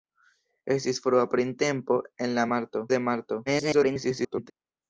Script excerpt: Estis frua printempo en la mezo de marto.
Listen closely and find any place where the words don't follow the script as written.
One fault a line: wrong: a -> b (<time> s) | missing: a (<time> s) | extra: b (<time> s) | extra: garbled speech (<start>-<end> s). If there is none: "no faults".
wrong: mezo -> marto (2.5 s)
extra: garbled speech (3.5-4.5 s)